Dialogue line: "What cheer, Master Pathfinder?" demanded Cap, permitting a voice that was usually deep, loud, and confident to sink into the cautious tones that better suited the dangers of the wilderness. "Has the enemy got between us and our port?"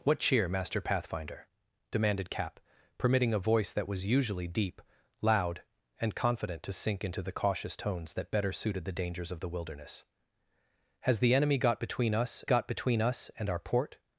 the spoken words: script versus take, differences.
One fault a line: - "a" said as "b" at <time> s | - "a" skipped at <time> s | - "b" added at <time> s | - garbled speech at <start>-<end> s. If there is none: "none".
- "got between us" added at 12.5 s